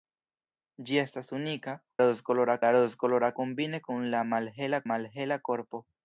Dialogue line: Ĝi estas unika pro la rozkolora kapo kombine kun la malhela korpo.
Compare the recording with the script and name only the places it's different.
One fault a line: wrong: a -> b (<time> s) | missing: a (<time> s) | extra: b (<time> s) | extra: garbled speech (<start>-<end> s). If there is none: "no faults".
wrong: pro -> rozkolora (2.0 s)
missing: kapo (3.3 s)
extra: malhela (4.9 s)